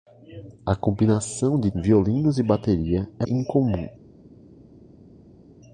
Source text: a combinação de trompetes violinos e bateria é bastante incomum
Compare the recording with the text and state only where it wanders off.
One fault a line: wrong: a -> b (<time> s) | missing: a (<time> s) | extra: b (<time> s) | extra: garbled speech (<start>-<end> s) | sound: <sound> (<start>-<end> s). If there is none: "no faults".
missing: trompetes (1.7 s)
missing: bastante (3.3 s)